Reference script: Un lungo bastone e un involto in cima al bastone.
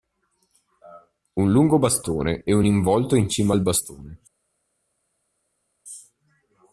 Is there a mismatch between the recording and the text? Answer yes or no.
no